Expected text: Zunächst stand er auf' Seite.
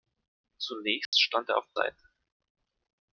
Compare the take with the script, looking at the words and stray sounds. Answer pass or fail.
fail